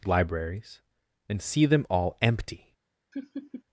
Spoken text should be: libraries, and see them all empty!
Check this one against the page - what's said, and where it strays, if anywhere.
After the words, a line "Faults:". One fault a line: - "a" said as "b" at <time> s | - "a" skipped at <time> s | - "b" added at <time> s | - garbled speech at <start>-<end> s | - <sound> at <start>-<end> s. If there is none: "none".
libraries, and see them all empty!
Faults:
- laugh at 3.1-3.6 s